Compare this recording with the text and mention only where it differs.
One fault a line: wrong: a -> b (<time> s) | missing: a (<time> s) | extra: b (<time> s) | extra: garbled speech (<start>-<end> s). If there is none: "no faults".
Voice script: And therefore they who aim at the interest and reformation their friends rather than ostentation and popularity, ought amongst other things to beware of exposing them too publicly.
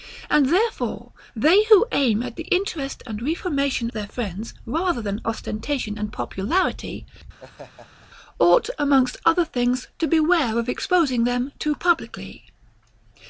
no faults